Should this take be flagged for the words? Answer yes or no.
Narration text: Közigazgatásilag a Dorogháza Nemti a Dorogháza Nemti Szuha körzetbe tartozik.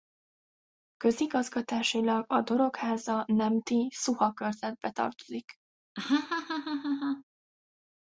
yes